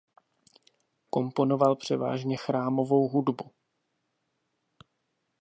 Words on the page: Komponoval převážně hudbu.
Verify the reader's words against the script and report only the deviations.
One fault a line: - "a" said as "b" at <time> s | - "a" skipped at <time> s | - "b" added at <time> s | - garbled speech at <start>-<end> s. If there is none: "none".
- "chrámovou" added at 2.4 s